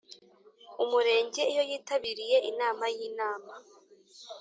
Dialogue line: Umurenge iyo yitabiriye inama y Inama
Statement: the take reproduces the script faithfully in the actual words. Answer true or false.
true